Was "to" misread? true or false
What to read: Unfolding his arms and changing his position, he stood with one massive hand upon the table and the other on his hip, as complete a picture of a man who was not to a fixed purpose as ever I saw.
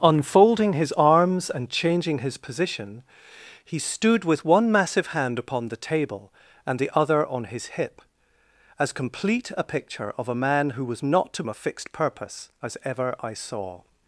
false